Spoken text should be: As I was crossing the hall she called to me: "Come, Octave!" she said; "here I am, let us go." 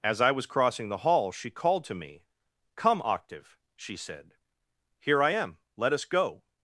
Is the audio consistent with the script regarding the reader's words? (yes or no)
yes